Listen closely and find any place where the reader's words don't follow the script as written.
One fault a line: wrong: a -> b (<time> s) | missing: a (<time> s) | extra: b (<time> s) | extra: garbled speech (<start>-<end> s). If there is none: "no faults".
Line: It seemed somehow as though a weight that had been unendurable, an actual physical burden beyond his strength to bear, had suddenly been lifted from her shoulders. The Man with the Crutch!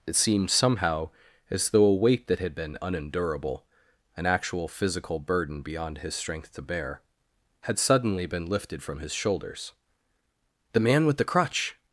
wrong: her -> his (9.0 s)